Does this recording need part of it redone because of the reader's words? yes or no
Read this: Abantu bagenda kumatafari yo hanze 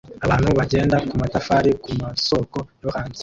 yes